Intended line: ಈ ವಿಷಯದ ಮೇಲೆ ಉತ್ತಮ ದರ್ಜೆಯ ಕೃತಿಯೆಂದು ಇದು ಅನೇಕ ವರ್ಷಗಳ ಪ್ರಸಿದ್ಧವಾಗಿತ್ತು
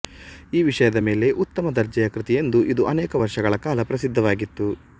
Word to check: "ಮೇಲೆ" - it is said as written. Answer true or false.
true